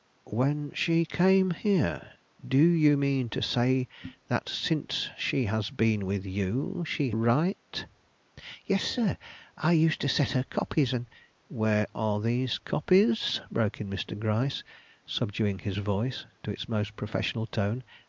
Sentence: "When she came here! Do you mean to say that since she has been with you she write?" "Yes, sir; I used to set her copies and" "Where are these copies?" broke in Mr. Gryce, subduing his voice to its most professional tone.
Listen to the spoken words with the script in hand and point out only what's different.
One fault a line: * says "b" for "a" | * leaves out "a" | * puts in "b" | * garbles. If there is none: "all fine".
all fine